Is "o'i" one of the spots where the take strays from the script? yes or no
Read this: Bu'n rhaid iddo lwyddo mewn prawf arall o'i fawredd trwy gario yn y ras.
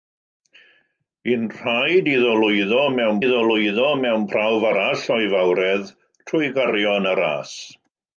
no